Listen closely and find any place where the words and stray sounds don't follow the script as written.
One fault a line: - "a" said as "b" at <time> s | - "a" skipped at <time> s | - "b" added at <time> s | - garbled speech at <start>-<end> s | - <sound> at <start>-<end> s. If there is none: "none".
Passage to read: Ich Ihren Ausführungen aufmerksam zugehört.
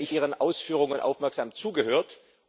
none